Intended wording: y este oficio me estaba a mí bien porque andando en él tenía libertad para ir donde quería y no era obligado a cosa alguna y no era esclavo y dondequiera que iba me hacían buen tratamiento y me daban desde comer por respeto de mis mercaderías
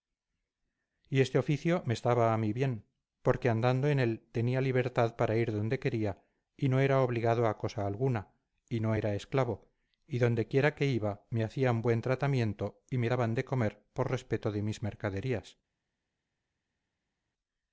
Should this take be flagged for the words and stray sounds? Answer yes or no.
yes